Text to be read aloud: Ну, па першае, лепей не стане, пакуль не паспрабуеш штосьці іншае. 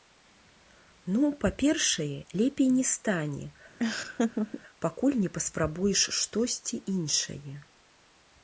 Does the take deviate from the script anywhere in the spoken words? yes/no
no